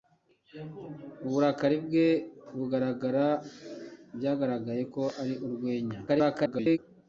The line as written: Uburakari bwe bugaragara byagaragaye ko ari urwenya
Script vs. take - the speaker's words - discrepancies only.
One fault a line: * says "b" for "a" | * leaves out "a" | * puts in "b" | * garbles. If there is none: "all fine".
* garbles